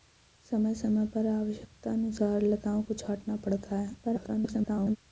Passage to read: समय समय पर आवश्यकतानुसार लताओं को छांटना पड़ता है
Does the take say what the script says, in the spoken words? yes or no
no